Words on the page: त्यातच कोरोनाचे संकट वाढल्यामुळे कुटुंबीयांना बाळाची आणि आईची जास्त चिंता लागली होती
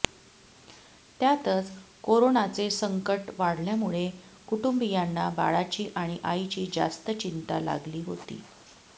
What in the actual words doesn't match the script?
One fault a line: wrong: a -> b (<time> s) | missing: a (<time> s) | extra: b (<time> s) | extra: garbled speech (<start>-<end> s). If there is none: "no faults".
no faults